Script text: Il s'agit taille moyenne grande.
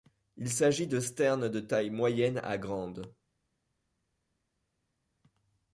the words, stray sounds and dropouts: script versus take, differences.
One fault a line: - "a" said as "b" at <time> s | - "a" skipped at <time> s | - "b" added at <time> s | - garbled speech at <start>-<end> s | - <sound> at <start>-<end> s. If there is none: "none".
- "de sternes de" added at 0.9 s
- "à" added at 2.4 s